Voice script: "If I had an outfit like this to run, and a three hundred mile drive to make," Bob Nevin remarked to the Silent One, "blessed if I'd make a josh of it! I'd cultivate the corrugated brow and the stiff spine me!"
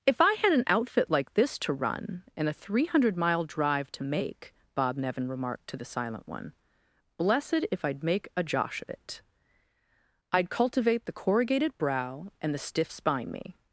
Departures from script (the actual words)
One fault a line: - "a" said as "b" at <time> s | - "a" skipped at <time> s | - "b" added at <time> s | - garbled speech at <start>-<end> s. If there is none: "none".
none